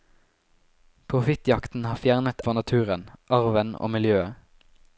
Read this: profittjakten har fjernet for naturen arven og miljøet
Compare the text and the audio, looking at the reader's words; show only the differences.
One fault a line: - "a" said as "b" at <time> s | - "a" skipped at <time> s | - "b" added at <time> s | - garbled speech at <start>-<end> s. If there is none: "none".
none